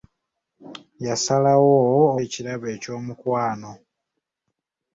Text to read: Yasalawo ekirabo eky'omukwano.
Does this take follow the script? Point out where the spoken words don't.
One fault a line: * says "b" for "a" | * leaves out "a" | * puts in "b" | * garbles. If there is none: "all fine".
all fine